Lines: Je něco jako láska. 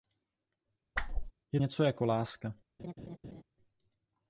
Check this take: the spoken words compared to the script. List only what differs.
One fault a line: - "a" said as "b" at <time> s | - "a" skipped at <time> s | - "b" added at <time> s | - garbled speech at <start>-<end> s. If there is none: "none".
none